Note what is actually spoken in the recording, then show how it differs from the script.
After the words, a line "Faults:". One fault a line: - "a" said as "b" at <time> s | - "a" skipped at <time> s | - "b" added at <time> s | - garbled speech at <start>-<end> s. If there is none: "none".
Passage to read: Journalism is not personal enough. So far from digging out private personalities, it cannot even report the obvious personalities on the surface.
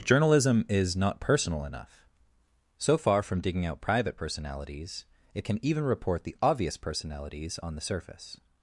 Journalism is not personal enough. So far from digging out private personalities, it can even report the obvious personalities on the surface.
Faults:
- "cannot" said as "can" at 5.4 s